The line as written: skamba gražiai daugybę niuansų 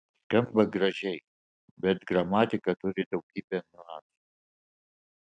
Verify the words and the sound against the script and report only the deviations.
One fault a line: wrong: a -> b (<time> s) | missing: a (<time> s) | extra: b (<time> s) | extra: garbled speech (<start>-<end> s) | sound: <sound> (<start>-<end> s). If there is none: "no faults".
extra: bet gramatika turi (1.8 s)